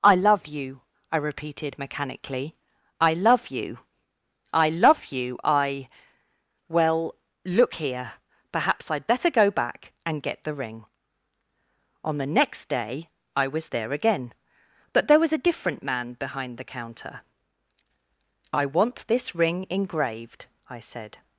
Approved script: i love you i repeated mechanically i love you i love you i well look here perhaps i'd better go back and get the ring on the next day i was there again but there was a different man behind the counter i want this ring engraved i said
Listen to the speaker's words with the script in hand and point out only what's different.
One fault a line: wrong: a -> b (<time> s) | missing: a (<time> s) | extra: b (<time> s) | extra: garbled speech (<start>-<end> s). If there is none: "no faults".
no faults